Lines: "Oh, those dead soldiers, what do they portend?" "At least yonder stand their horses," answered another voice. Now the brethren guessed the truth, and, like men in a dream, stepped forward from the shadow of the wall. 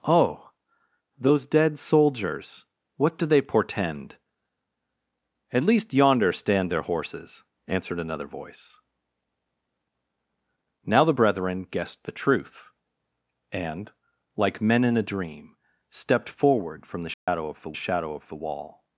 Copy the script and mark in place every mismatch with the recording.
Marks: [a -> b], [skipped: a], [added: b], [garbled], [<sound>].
"Oh, those dead soldiers, what do they portend?" "At least yonder stand their horses," answered another voice. Now the brethren guessed the truth, and, like men in a dream, stepped forward from the shadow [dropout] of the [added: shadow of the] wall.